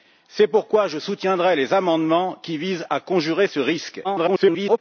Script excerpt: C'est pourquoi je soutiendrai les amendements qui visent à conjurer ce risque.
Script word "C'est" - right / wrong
right